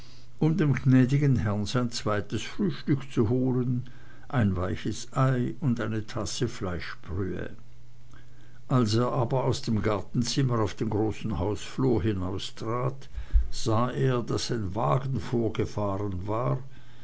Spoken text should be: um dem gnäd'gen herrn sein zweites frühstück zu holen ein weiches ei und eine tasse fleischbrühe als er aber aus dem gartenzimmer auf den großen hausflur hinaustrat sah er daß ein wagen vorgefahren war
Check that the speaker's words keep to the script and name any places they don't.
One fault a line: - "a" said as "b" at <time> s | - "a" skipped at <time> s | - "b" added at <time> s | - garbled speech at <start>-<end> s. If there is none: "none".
none